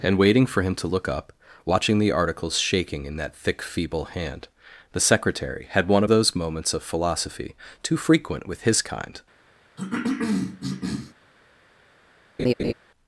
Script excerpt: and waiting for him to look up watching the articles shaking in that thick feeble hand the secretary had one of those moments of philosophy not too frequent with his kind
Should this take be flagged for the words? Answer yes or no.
yes